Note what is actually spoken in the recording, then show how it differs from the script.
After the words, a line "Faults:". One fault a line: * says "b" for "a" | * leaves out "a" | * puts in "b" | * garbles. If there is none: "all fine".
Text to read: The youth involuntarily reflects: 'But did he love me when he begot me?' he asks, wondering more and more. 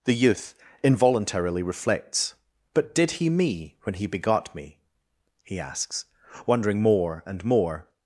The youth involuntarily reflects: 'But did he me when he begot me?' he asks, wondering more and more.
Faults:
* leaves out "love"